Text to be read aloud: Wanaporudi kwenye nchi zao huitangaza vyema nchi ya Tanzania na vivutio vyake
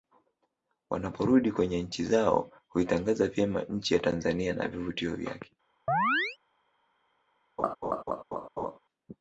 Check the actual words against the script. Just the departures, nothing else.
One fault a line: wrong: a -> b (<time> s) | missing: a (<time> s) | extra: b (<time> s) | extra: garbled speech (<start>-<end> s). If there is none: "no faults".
no faults